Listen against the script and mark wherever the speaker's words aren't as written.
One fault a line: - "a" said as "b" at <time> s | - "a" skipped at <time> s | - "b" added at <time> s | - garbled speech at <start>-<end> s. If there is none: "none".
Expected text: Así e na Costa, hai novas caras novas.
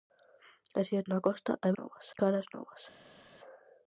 none